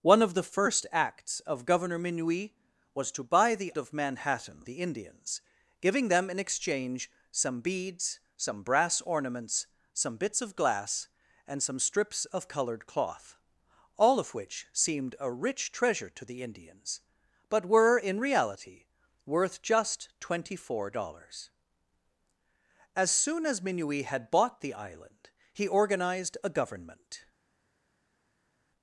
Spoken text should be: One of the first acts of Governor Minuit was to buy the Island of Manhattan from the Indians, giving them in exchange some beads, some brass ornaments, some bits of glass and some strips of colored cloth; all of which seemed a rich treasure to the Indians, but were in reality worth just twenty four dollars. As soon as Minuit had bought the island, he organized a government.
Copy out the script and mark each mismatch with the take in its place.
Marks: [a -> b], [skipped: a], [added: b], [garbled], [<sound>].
One of the first acts of Governor Minuit was to buy the [skipped: Island] of Manhattan [skipped: from] the Indians, giving them in exchange some beads, some brass ornaments, some bits of glass and some strips of colored cloth; all of which seemed a rich treasure to the Indians, but were in reality worth just twenty four dollars. As soon as Minuit had bought the island, he organized a government.